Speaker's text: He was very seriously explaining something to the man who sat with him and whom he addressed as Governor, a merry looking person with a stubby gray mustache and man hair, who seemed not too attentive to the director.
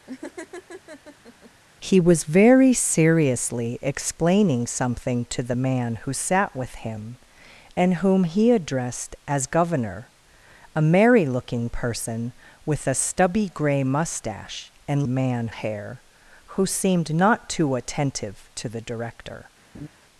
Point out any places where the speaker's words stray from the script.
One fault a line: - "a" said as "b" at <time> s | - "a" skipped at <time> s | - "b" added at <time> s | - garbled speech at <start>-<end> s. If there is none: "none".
none